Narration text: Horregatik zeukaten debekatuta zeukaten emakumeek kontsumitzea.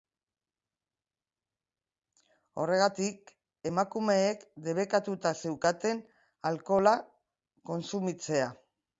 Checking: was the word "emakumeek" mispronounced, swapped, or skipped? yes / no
yes